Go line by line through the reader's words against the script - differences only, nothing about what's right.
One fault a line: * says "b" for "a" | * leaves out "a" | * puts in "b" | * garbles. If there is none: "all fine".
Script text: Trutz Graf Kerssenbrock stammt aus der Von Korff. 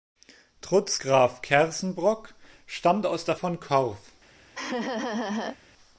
all fine